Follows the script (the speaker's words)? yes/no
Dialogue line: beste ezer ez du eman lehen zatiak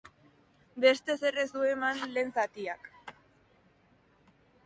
yes